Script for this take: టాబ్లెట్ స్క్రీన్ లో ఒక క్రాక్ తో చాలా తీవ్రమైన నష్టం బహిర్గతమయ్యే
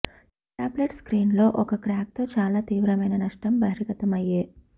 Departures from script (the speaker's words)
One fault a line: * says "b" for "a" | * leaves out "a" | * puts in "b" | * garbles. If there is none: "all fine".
all fine